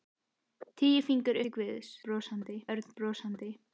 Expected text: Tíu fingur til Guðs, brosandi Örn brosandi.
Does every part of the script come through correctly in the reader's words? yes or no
yes